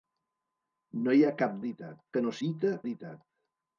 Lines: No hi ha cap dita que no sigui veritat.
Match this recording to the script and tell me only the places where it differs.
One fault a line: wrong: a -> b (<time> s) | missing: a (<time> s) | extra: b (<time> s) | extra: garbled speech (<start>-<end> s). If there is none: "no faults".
wrong: dita -> veritat (1.6 s)
wrong: sigui -> dita (2.5 s)